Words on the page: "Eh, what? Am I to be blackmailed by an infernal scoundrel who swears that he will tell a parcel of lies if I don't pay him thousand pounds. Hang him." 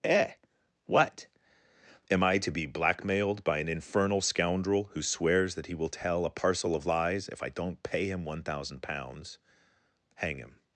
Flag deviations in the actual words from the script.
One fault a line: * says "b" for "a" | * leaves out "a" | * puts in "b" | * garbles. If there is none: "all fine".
* puts in "one"